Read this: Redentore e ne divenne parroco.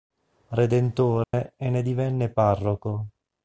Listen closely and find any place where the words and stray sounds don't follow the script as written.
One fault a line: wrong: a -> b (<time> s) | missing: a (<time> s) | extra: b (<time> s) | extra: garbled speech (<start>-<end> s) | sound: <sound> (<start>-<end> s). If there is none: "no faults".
sound: dropout (1.2-1.3 s)